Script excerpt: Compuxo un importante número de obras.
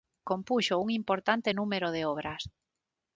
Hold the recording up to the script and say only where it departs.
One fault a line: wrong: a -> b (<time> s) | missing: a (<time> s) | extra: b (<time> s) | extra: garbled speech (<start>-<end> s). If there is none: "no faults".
no faults